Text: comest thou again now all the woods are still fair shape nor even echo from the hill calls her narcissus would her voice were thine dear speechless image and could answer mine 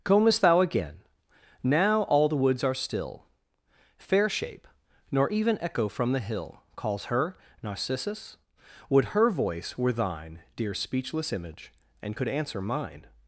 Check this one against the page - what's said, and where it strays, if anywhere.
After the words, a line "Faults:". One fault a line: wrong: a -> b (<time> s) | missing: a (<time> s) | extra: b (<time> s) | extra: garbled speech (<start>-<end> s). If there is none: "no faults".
comest thou again now all the woods are still fair shape nor even echo from the hill calls her narcissus would her voice were thine dear speechless image and could answer mine
Faults:
no faults